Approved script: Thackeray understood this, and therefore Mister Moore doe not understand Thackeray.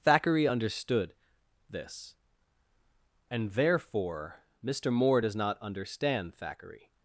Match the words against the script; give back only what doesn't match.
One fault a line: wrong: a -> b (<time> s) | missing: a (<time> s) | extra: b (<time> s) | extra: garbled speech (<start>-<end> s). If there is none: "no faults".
wrong: doe -> does (5.2 s)